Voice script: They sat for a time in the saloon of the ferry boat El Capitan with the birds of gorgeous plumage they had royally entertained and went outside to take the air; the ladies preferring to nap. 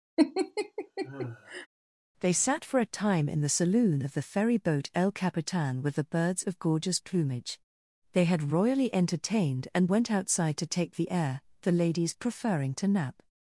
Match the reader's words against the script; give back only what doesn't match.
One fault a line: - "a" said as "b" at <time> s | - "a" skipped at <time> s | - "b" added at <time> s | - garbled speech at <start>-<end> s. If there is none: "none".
none